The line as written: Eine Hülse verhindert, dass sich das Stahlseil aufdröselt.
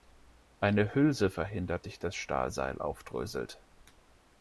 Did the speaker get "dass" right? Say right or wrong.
wrong